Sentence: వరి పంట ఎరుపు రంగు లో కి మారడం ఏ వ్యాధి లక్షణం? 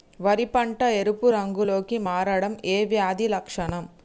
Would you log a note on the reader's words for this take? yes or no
no